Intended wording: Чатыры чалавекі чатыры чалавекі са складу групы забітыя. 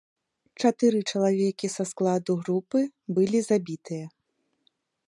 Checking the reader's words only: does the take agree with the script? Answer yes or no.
no